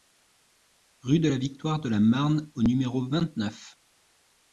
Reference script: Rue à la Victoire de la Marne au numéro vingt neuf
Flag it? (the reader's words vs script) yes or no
yes